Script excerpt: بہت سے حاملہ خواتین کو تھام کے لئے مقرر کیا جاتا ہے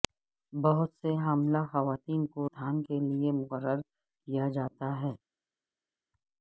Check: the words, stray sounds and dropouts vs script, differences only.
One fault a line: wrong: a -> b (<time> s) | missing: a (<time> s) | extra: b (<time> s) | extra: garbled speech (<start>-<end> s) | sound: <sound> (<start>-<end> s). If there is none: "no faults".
no faults